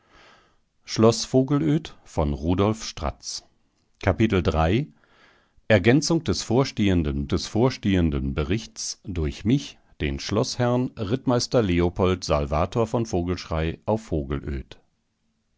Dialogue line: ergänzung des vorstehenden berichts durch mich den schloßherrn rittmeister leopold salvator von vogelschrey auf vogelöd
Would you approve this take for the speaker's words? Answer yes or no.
no